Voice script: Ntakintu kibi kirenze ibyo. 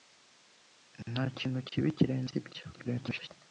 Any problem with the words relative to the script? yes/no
yes